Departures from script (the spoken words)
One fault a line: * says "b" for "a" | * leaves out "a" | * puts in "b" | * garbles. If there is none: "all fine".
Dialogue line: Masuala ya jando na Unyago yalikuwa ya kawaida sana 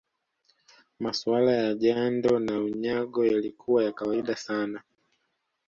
all fine